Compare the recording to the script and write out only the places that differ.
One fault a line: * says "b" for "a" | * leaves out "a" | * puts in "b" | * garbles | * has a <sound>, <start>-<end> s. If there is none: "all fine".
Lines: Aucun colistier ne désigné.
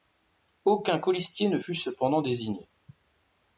* puts in "fut cependant"